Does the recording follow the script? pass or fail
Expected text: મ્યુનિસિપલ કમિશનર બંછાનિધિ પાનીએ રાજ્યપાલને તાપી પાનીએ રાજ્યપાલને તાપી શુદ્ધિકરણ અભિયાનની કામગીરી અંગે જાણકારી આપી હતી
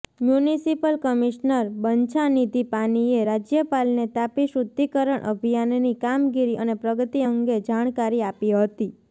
fail